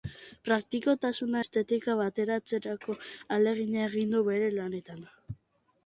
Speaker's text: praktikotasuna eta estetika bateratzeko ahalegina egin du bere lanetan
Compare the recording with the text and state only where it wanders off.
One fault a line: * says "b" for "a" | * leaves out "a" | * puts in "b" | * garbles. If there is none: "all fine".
* leaves out "eta"